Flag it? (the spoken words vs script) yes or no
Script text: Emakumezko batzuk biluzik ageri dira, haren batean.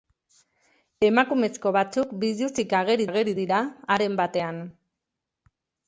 yes